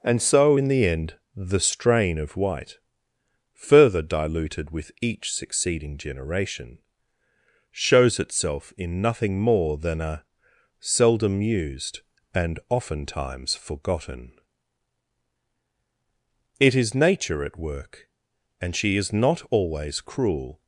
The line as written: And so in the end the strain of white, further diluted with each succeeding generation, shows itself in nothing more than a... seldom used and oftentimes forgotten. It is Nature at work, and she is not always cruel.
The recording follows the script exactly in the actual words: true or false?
true